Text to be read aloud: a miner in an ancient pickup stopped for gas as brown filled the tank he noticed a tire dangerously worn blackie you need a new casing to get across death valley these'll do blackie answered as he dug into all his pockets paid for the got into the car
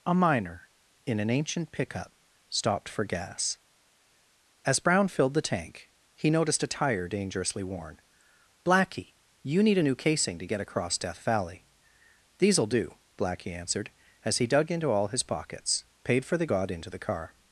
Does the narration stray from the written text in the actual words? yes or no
no